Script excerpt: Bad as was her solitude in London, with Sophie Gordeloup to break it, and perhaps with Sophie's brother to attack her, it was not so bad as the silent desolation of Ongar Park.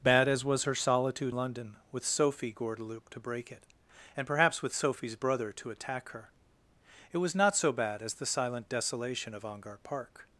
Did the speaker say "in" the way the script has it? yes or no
no